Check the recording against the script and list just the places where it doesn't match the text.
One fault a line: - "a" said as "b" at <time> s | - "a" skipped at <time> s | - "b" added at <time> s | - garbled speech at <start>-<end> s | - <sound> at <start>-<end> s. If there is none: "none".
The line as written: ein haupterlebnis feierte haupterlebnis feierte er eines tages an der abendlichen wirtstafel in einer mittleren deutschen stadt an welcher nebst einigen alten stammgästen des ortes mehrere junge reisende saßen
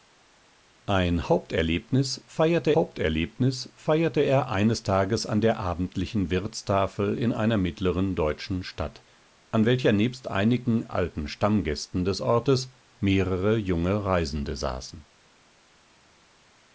none